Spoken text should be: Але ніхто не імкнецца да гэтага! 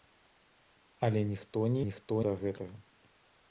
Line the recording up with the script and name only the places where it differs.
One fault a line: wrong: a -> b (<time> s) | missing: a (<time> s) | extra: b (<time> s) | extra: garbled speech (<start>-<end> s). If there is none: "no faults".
wrong: імкнецца -> ніхто (1.9 s)